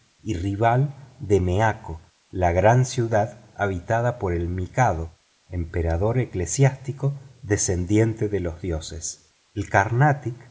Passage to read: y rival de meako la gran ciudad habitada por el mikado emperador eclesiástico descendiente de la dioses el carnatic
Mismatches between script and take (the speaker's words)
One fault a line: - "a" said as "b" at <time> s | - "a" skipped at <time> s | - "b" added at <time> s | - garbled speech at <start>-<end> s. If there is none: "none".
- "la" said as "los" at 8.4 s